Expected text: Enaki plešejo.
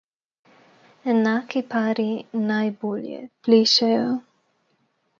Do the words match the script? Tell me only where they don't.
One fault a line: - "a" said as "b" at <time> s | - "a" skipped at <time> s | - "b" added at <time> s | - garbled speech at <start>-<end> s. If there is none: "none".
- "pari najbolje" added at 1.7 s